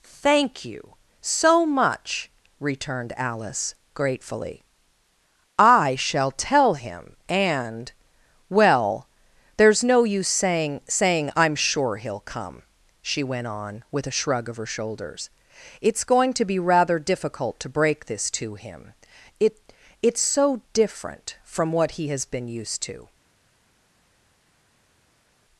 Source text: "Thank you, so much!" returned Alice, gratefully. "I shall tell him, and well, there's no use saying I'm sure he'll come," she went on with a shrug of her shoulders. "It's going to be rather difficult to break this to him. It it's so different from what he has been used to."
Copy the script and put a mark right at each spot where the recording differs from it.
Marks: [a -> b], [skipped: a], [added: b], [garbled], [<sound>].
"Thank you, so much!" returned Alice, gratefully. "I shall tell him, and well, there's no use saying [added: saying] I'm sure he'll come," she went on with a shrug of her shoulders. "It's going to be rather difficult to break this to him. It it's so different from what he has been used to."